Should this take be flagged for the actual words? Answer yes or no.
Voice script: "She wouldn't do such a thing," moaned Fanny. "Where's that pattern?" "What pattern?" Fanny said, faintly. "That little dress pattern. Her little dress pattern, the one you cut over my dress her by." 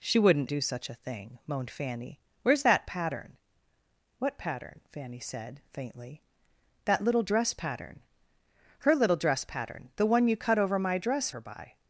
no